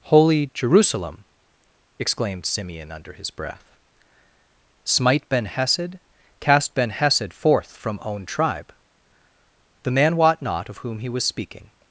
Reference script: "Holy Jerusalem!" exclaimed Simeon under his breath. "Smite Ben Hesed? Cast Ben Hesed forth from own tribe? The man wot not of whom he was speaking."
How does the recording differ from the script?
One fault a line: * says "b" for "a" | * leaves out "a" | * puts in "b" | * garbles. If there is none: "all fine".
all fine